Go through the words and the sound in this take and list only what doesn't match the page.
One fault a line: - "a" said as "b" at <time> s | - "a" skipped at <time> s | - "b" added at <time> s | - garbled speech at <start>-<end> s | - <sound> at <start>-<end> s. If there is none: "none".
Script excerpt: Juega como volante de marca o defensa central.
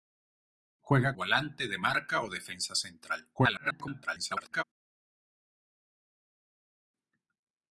- "como" skipped at 1.1 s
- garbled speech at 3.3-4.6 s